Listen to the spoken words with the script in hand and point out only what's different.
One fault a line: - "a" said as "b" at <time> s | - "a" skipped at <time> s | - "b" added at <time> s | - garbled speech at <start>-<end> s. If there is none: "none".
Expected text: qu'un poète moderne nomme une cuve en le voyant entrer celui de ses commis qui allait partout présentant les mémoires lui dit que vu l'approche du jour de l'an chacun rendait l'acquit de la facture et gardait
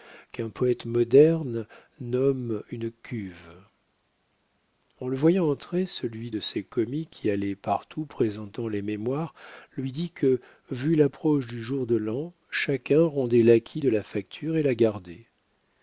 - "la" added at 14.6 s